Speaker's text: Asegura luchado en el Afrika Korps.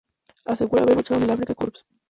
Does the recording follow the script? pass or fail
fail